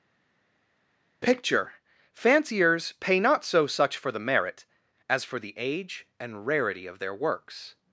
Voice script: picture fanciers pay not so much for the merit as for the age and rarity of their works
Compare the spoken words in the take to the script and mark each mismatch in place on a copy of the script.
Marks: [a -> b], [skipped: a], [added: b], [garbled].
picture fanciers pay not so [much -> such] for the merit as for the age and rarity of their works